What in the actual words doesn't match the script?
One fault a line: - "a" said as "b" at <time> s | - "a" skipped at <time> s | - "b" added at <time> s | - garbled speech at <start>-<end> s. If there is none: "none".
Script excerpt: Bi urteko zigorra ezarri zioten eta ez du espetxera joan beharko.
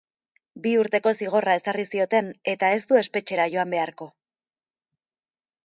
none